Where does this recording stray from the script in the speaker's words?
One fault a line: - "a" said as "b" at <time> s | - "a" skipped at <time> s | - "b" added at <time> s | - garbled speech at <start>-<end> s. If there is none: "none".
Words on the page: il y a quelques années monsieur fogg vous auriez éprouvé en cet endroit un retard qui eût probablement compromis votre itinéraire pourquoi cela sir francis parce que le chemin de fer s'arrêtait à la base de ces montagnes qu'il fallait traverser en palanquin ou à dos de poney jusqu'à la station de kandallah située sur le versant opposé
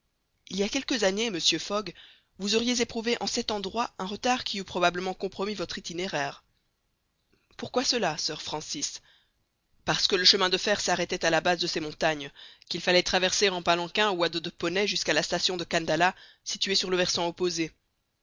none